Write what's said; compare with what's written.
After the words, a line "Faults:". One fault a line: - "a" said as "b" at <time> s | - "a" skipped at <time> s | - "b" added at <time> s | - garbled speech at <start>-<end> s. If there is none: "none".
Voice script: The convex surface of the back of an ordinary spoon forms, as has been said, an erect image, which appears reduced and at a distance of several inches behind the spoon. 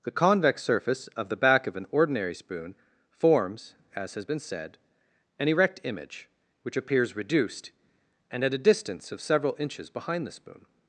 The convex surface of the back of an ordinary spoon forms, as has been said, an erect image, which appears reduced and at a distance of several inches behind the spoon.
Faults:
none